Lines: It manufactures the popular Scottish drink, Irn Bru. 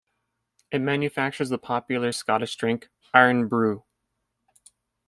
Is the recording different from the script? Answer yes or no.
no